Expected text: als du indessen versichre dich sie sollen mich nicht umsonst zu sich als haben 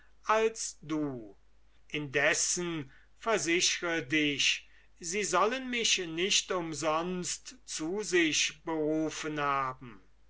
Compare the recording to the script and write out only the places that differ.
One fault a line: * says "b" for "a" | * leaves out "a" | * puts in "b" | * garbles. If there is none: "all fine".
* says "berufen" for "als"